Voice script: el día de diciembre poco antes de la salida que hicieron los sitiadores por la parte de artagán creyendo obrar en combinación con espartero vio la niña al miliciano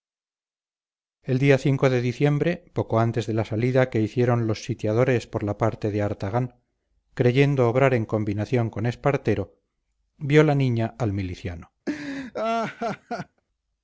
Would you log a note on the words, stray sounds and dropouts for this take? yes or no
yes